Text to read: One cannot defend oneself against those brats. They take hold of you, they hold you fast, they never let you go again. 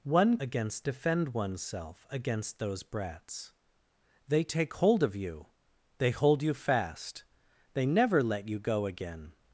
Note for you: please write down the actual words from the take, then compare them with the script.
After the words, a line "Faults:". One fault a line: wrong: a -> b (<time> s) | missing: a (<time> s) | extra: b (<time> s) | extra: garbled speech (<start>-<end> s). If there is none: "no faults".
One against defend oneself against those brats. They take hold of you, they hold you fast, they never let you go again.
Faults:
wrong: cannot -> against (0.4 s)